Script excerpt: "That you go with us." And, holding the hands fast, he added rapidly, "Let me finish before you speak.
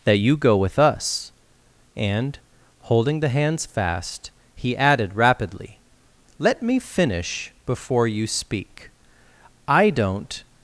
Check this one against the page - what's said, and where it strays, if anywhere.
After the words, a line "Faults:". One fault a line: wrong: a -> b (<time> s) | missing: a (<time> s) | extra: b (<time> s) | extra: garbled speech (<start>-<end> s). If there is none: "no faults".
"That you go with us." And, holding the hands fast, he added rapidly, "Let me finish before you speak. I don't
Faults:
extra: I don't (9.7 s)